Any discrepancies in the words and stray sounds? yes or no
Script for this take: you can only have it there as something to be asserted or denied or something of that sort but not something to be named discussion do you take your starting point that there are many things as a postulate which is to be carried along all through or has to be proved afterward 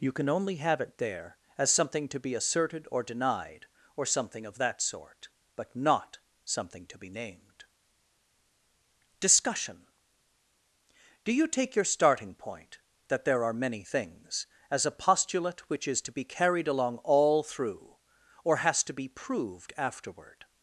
no